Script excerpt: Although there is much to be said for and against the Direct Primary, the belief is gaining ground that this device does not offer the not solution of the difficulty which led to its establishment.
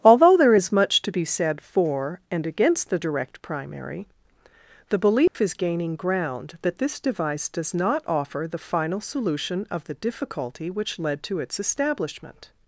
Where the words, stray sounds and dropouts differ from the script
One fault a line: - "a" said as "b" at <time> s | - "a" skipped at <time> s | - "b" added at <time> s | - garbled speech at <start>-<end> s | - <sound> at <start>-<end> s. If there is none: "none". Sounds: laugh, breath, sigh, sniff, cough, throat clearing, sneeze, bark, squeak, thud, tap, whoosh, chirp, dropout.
- dropout at 5.3-5.3 s
- "not" said as "final" at 8.6 s